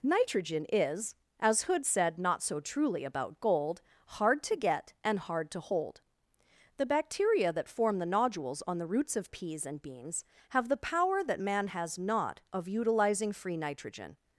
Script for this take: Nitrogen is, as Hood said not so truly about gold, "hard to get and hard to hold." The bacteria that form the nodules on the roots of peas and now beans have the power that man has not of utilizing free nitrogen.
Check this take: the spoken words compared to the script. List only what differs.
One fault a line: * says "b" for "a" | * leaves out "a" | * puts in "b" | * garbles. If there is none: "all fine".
* leaves out "now"